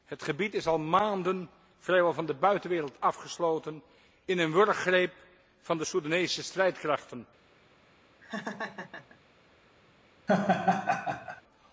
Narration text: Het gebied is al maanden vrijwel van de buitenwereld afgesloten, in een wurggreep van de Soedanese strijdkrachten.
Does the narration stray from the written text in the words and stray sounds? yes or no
yes